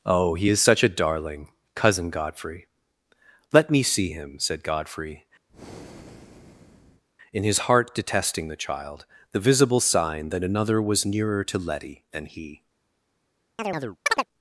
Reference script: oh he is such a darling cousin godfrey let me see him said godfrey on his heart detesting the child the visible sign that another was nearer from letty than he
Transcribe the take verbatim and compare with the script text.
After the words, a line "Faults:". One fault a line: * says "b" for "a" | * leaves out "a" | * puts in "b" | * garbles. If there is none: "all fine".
oh he is such a darling cousin godfrey let me see him said godfrey in his heart detesting the child the visible sign that another was nearer to letty than he
Faults:
* says "in" for "on"
* says "to" for "from"